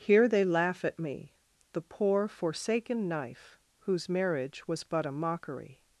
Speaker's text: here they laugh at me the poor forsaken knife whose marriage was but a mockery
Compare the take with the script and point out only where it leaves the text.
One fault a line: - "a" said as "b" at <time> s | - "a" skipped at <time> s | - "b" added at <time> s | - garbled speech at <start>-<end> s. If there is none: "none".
none